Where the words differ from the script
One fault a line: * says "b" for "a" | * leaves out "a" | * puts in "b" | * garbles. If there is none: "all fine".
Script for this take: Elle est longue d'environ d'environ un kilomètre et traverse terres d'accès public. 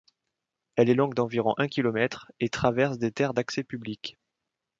* leaves out "d'environ"
* puts in "des"